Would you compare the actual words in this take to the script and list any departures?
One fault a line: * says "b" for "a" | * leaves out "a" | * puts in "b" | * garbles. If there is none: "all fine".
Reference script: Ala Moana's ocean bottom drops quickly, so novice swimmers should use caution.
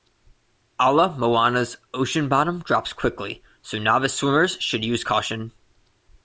all fine